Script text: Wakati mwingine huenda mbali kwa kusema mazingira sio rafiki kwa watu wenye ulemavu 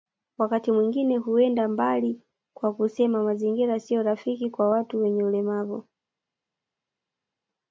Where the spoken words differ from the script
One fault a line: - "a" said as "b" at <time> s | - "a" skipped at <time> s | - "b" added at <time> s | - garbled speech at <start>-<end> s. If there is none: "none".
none